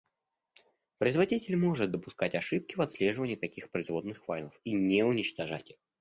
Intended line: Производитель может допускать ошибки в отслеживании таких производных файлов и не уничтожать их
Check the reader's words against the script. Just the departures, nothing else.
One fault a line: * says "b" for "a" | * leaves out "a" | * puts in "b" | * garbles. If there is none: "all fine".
all fine